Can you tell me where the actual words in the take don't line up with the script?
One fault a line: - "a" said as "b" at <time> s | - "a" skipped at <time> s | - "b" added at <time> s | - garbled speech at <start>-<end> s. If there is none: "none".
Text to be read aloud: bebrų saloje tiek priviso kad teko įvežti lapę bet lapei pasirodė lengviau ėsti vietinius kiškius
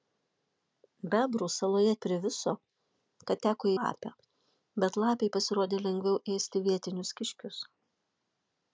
- "tiek" skipped at 1.9 s
- "įvežti" skipped at 3.7 s